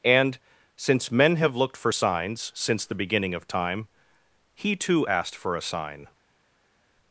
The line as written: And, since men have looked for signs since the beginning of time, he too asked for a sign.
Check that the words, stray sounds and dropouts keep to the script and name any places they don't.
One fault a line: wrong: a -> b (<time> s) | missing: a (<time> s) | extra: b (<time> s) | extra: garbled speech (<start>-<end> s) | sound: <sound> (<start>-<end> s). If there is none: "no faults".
no faults